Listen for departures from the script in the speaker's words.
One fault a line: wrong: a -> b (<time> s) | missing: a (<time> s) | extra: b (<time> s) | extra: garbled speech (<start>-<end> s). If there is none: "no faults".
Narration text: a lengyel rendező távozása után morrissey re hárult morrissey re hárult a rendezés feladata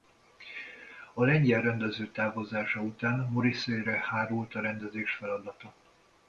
missing: morrissey re hárult (4.5 s)